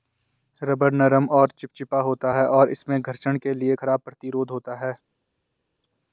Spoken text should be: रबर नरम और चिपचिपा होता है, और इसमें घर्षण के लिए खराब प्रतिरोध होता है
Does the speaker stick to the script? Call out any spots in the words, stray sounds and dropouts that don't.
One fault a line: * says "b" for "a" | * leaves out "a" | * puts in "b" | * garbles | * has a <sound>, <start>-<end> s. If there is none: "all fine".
all fine